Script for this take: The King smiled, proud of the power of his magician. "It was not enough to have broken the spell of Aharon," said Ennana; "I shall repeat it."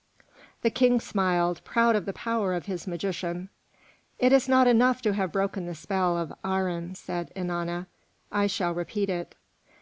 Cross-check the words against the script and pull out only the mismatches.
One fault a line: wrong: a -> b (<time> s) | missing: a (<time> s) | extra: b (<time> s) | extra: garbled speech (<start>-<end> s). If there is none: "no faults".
wrong: was -> is (4.3 s)